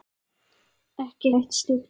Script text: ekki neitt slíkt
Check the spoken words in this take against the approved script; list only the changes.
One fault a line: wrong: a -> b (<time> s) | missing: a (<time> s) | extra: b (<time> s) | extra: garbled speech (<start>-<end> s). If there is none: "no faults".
no faults